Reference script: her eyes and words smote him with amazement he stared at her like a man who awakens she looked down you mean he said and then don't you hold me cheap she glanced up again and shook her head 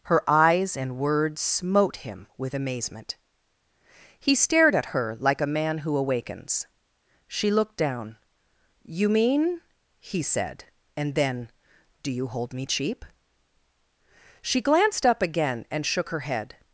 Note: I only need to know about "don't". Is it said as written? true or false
false